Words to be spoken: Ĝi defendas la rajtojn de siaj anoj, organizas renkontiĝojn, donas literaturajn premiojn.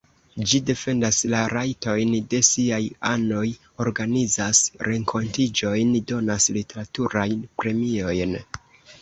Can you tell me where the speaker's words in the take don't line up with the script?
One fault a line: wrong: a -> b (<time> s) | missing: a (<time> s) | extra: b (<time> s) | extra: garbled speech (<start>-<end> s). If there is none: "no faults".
no faults